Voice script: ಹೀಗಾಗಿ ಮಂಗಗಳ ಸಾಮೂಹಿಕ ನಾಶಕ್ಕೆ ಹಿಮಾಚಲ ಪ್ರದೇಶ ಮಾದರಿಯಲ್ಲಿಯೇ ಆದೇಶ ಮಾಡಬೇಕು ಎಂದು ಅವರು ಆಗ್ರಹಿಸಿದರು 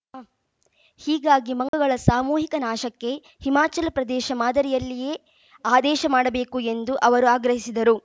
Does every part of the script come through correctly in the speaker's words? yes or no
yes